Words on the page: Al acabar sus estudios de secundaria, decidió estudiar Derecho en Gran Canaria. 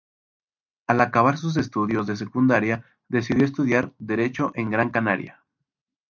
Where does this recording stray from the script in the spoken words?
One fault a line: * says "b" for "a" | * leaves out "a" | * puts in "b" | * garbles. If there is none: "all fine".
all fine